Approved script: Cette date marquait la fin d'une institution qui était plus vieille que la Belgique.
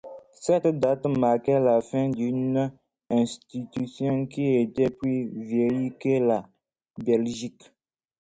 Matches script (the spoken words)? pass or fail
pass